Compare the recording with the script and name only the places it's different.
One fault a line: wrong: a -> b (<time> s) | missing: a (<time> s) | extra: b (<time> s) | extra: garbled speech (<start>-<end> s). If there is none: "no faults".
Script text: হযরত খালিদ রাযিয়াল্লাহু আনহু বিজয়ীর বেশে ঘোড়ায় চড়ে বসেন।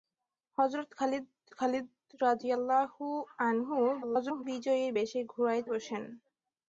extra: খালিদ (1.5 s)
extra: garbled speech (4.0-4.4 s)
missing: চড়ে (5.6 s)